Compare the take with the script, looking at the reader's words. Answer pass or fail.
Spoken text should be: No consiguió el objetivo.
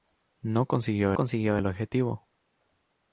fail